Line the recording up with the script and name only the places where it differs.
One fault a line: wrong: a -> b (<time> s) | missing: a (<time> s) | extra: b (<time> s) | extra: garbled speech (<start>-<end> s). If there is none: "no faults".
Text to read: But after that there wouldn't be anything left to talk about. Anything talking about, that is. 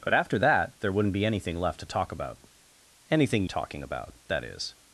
no faults